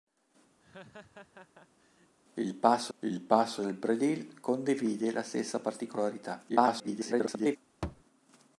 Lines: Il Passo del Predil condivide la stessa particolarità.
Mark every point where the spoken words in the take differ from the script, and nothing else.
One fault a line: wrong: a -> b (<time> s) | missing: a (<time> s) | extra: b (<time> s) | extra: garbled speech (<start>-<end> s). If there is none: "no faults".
extra: il Passo (3.0 s)
extra: garbled speech (6.5-7.6 s)